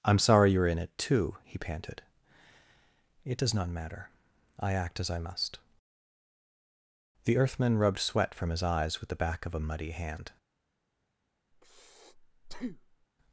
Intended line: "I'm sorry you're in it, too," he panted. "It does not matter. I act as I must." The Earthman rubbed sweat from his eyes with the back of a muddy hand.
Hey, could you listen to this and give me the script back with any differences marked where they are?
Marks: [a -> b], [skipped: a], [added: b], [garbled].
"I'm sorry you're in it, too," he panted. "It does not matter. I act as I must." The Earthman rubbed sweat from his eyes with the back of a muddy hand.